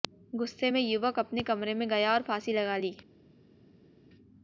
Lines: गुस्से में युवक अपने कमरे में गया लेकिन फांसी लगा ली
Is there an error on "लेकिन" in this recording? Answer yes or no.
yes